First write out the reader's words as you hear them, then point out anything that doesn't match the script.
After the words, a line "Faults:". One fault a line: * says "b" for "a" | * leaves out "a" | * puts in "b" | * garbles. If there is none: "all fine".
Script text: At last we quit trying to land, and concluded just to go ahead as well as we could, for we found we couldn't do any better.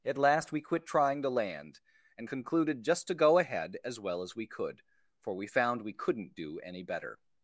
At last we quit trying to land, and concluded just to go ahead as well as we could, for we found we couldn't do any better.
Faults:
all fine